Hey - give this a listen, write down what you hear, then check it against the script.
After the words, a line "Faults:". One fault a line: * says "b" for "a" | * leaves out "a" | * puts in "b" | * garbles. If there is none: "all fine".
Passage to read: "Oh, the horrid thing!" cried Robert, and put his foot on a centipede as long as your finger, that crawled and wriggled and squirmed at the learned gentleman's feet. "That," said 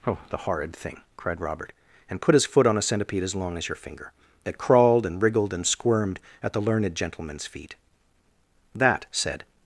"Oh, the horrid thing!" cried Robert, and put his foot on a centipede as long as your finger, that crawled and wriggled and squirmed at the learned gentleman's feet. "That," said
Faults:
all fine